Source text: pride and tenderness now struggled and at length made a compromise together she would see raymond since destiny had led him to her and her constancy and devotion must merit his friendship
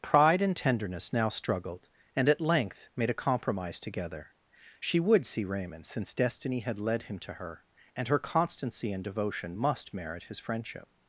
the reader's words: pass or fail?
pass